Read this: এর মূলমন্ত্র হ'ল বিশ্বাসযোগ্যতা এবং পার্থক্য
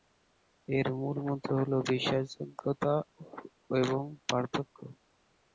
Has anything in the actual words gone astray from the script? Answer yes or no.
no